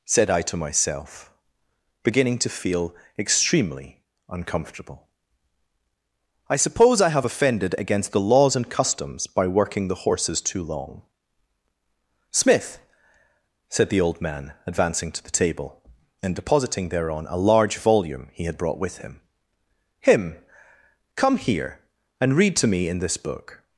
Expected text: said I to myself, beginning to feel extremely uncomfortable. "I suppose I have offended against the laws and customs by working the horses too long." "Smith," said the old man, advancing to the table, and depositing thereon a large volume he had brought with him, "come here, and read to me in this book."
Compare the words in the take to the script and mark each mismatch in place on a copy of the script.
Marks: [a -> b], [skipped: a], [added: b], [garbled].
said I to myself, beginning to feel extremely uncomfortable. "I suppose I have offended against the laws and customs by working the horses too long." "Smith," said the old man, advancing to the table, and depositing thereon a large volume he had brought with him, [added: him] "come here, and read to me in this book."